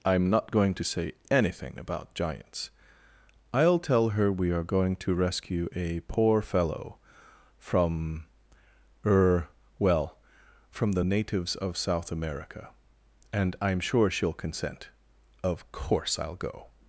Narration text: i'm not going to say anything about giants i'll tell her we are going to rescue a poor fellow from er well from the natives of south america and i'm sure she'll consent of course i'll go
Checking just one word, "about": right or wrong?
right